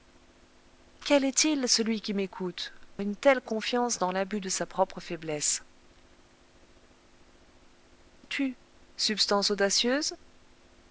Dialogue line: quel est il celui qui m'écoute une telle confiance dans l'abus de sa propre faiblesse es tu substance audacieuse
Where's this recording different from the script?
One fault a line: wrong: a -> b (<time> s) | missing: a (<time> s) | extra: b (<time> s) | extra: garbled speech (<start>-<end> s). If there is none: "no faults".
no faults